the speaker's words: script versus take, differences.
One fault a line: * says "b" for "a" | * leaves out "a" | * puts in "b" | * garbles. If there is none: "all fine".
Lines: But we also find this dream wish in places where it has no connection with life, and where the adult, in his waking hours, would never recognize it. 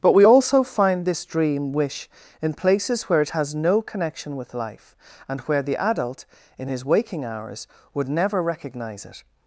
all fine